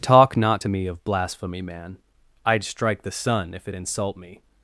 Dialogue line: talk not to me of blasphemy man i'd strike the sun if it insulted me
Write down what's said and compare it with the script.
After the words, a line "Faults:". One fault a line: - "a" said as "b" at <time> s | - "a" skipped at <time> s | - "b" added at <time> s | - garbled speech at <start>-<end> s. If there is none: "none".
talk not to me of blasphemy man i'd strike the sun if it insult me
Faults:
- "insulted" said as "insult" at 3.7 s